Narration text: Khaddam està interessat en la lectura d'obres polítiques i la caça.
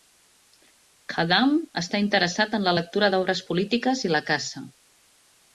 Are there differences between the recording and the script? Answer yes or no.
no